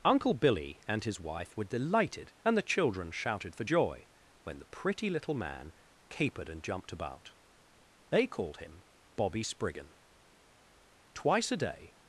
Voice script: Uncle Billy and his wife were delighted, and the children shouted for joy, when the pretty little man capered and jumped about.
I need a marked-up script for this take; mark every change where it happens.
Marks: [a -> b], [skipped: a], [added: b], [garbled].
Uncle Billy and his wife were delighted, and the children shouted for joy, when the pretty little man capered and jumped about. [added: They called him Bobby Spriggan Twice a day]